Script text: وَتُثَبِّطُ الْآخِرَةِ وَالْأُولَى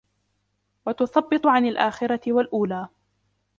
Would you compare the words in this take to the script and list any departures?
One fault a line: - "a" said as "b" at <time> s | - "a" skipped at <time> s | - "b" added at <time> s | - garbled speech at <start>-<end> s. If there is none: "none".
- "عَنْ" added at 1.5 s